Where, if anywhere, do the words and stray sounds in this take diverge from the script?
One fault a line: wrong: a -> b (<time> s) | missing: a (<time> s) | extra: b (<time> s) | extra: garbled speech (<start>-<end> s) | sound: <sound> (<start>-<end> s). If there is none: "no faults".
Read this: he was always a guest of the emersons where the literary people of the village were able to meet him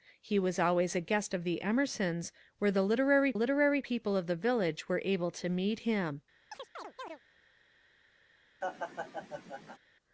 extra: literary (3.3 s)
sound: chirp (6.5-7.2 s)
sound: laugh (8.6-9.8 s)